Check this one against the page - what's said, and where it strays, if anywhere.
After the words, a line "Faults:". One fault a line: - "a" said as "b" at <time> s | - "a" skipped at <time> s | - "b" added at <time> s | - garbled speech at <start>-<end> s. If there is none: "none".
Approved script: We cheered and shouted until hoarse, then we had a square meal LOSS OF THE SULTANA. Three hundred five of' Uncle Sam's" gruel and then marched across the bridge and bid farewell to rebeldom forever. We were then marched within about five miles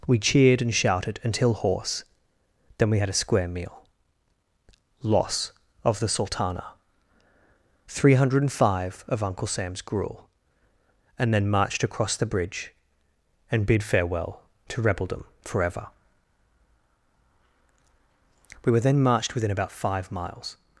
We cheered and shouted until hoarse, then we had a square meal LOSS OF THE SULTANA. Three hundred five of' Uncle Sam's" gruel and then marched across the bridge and bid farewell to rebeldom forever. We were then marched within about five miles
Faults:
none